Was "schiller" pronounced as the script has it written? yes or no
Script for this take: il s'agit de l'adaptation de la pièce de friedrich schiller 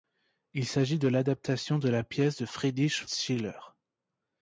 yes